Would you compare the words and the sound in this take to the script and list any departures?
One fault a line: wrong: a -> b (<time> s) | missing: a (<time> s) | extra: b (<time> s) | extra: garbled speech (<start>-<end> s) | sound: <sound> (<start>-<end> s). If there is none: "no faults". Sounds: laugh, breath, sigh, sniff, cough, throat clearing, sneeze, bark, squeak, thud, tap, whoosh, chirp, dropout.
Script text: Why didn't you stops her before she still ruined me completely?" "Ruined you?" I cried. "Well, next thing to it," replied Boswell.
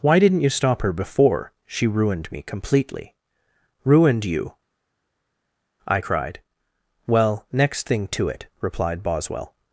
wrong: stops -> stop (0.5 s)
missing: still (1.9 s)